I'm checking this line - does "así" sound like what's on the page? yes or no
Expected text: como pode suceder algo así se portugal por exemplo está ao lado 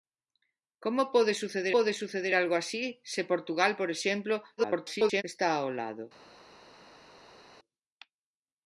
yes